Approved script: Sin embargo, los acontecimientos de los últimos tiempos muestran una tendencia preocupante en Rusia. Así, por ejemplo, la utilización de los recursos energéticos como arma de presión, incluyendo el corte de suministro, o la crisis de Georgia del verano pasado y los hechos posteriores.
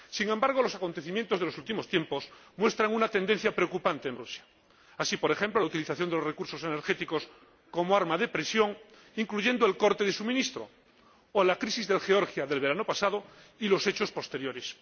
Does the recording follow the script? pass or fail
pass